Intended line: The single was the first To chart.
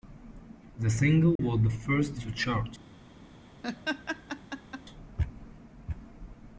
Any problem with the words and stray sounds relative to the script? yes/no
yes